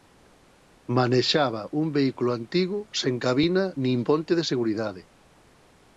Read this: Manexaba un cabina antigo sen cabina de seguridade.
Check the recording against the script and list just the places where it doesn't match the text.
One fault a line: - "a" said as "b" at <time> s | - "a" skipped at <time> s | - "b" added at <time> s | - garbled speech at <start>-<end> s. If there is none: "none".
- "cabina" said as "vehículo" at 2.0 s
- "nin ponte" added at 3.8 s